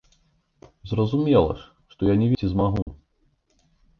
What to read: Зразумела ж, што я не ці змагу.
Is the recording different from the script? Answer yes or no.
no